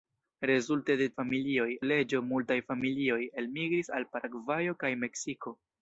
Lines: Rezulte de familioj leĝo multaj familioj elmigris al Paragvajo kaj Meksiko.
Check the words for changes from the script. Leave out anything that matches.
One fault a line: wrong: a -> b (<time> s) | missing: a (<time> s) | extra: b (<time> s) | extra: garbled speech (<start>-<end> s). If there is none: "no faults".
no faults